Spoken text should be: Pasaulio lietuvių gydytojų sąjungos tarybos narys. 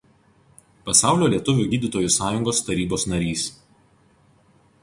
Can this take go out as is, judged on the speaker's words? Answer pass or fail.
pass